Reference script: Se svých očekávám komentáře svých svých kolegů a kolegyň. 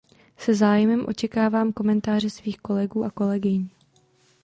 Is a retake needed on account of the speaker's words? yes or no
yes